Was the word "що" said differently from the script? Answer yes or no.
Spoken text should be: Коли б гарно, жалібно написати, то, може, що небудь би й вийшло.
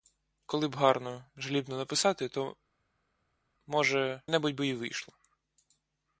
yes